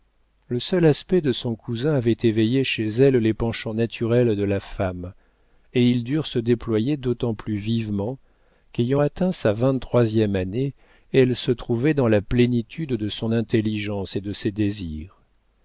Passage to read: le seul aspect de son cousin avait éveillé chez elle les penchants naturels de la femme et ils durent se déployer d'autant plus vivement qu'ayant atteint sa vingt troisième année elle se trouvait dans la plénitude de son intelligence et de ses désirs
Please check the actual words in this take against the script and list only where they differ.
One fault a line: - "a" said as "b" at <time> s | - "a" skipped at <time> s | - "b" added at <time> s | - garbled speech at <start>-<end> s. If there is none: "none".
none